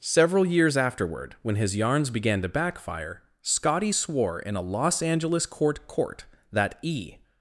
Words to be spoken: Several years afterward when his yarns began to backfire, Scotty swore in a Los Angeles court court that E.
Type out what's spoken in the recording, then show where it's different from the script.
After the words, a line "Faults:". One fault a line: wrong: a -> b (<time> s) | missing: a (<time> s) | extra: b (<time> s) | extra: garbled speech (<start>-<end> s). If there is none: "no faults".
Several years afterward when his yarns began to backfire, Scotty swore in a Los Angeles court court that E.
Faults:
no faults